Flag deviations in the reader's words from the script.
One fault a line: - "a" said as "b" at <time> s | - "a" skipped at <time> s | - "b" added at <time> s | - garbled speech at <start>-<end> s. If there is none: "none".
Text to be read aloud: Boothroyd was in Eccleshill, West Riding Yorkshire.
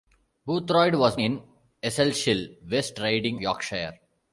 none